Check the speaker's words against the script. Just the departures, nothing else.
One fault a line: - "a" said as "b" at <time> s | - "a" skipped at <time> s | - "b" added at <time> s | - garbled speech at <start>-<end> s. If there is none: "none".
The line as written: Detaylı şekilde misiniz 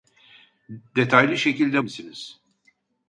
none